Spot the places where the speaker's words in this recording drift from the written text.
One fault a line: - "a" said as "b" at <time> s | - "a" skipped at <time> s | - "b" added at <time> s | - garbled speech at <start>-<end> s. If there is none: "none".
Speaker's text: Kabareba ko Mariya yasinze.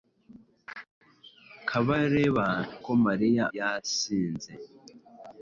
none